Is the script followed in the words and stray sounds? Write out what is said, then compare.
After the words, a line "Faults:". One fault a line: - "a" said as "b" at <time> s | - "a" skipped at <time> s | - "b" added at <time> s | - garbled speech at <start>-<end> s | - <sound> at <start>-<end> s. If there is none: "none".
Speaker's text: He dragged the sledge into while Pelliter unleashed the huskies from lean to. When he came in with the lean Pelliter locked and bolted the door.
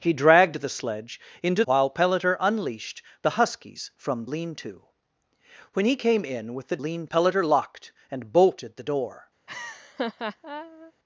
He dragged the sledge into while Pelliter unleashed the huskies from lean to. When he came in with the lean Pelliter locked and bolted the door.
Faults:
- laugh at 9.5-10.9 s